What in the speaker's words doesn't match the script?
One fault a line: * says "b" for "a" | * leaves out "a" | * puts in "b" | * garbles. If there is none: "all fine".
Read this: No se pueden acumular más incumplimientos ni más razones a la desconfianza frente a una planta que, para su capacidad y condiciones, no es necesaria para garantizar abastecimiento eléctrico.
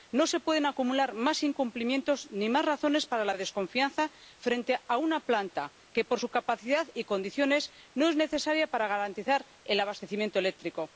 * says "para" for "a"
* says "por" for "para"
* puts in "el"